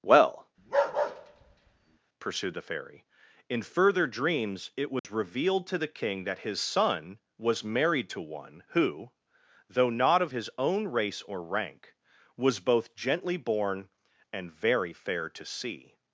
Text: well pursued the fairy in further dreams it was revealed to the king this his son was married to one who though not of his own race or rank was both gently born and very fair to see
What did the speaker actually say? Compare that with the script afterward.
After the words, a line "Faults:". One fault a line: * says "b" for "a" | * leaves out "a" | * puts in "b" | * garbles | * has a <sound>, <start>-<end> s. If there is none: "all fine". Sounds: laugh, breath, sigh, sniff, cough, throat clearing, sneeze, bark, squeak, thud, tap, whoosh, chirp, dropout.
well pursued the fairy in further dreams it was revealed to the king that his son was married to one who though not of his own race or rank was both gently born and very fair to see
Faults:
* has a bark, 0.6-2.0 s
* has a dropout, 5.0-5.0 s
* says "that" for "this"